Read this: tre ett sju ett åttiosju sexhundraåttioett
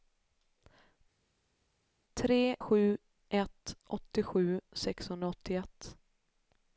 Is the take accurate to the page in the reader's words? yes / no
no